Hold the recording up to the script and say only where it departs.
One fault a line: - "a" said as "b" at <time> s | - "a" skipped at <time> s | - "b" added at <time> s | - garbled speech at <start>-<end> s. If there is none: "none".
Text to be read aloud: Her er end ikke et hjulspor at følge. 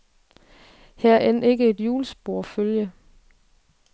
none